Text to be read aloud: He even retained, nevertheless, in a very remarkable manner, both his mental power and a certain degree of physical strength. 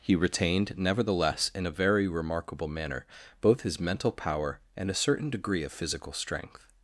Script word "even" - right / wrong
wrong